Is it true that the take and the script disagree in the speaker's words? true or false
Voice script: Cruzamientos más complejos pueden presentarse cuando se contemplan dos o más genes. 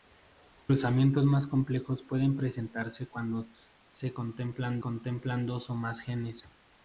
true